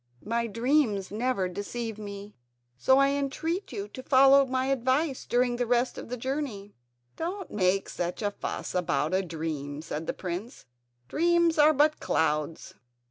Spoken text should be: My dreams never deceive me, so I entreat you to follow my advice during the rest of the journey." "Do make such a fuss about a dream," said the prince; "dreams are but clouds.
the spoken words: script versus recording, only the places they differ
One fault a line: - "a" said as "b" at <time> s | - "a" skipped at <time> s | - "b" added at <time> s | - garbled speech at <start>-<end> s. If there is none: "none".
- "Do" said as "Don't" at 7.2 s